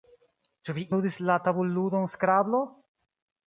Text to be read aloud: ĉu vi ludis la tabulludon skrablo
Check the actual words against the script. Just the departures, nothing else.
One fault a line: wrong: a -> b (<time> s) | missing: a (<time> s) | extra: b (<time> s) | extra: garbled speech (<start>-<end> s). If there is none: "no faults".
no faults